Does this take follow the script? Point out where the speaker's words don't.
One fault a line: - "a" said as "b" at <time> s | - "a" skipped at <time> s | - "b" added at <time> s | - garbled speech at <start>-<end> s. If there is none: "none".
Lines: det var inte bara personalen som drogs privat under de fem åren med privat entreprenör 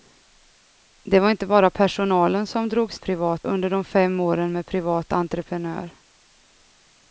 none